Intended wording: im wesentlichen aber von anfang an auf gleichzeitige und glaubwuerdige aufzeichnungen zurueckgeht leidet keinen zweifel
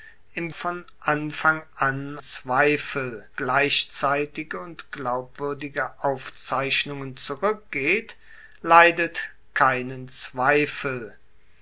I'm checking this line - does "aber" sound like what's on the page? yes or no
no